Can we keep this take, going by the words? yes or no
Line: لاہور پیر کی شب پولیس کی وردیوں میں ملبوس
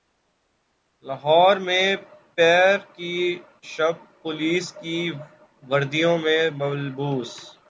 no